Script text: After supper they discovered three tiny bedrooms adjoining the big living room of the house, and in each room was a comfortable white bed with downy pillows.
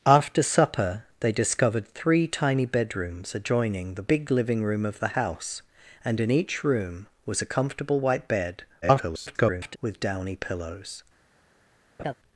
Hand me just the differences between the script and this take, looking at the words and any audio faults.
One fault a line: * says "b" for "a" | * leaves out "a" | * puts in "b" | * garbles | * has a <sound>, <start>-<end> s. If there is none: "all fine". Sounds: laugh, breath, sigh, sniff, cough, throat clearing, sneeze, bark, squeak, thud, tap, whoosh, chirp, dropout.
* garbles
* has a laugh, 12.0-12.1 s